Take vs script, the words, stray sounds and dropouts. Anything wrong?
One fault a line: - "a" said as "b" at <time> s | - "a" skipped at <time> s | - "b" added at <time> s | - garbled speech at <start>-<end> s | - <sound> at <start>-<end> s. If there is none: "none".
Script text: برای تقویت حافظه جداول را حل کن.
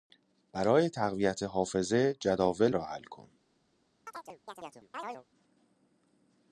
- chirp at 4.1-5.2 s